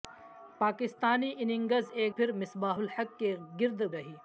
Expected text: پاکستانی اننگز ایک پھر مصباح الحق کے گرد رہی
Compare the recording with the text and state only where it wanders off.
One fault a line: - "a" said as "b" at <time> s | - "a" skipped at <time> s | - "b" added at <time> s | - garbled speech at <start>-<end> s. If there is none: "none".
none